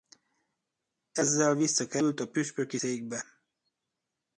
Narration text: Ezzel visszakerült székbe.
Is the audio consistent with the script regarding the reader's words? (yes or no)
no